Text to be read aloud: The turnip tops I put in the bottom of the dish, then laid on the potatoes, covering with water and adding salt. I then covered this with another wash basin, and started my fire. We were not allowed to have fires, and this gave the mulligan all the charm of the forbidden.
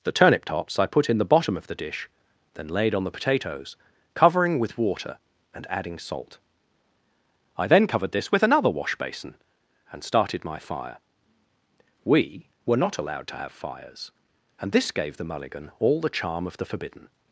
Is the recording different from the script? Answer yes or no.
no